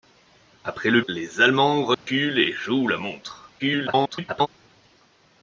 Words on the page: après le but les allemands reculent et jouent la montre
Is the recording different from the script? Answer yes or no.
yes